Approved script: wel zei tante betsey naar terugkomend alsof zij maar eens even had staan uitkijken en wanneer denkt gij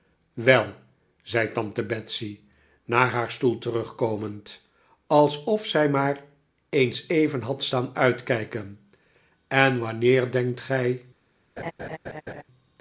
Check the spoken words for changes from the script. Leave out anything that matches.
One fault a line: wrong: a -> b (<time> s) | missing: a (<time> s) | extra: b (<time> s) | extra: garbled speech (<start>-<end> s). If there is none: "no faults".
extra: haar stoel (3.1 s)